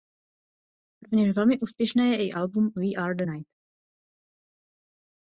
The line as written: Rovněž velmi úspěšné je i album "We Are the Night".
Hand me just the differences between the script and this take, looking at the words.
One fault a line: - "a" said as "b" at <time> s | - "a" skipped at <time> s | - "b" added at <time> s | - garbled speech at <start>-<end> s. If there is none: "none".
none